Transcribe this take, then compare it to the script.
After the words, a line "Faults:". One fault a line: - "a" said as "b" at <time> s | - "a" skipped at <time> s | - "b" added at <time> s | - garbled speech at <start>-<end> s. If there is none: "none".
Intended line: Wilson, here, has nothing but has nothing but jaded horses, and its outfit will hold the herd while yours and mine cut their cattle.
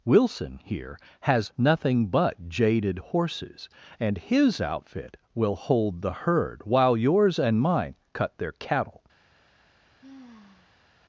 Wilson, here, has nothing but jaded horses, and his outfit will hold the herd while yours and mine cut their cattle.
Faults:
- "has nothing but" skipped at 2.5 s
- "its" said as "his" at 4.2 s